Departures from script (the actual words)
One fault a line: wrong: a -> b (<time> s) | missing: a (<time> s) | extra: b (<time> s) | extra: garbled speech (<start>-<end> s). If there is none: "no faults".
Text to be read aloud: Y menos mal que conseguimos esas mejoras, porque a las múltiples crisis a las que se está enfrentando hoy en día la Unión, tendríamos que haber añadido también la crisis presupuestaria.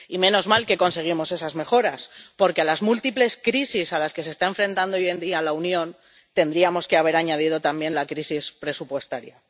no faults